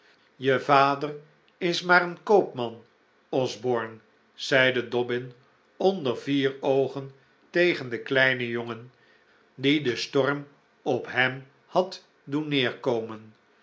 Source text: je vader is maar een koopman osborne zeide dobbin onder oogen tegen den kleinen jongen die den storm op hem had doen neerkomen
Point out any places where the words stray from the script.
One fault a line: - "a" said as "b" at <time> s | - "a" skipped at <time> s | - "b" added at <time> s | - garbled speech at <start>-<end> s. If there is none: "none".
- "vier" added at 6.2 s